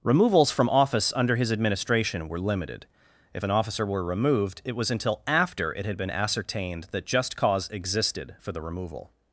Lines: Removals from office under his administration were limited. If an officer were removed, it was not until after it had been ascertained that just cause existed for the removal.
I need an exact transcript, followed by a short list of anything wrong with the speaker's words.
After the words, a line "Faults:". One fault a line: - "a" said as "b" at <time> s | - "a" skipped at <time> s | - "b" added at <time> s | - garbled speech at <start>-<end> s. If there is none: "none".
Removals from office under his administration were limited. If an officer were removed, it was until after it had been ascertained that just cause existed for the removal.
Faults:
- "not" skipped at 4.9 s